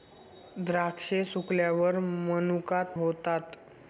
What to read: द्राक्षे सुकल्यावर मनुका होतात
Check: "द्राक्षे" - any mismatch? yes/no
no